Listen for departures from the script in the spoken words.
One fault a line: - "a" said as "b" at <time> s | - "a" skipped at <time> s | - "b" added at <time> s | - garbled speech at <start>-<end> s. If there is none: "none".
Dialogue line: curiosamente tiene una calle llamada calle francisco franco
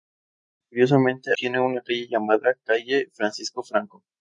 none